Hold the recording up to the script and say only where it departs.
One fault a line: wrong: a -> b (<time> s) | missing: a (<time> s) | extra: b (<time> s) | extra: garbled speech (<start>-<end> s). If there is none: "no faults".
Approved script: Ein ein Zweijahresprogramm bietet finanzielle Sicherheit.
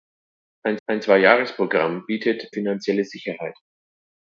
no faults